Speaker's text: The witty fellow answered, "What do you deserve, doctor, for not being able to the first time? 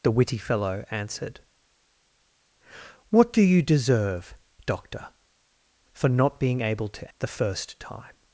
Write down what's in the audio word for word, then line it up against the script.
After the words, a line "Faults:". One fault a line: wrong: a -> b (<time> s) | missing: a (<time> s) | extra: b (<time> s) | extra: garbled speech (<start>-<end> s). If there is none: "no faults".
The witty fellow answered, "What do you deserve, doctor, for not being able to the first time?
Faults:
no faults